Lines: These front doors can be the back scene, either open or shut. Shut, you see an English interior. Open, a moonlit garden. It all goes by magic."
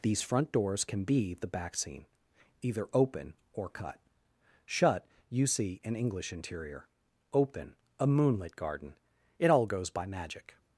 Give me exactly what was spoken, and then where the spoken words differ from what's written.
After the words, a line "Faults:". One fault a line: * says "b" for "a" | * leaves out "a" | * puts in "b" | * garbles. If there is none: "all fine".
These front doors can be the back scene, either open or cut. Shut, you see an English interior. Open, a moonlit garden. It all goes by magic."
Faults:
* says "cut" for "shut"